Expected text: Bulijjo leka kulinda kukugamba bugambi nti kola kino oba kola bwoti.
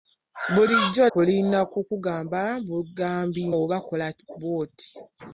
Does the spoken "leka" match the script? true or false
false